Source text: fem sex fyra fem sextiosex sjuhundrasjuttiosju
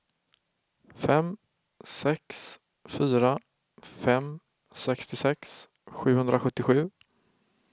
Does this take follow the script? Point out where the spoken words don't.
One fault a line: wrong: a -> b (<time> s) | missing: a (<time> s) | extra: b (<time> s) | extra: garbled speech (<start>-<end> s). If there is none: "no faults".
no faults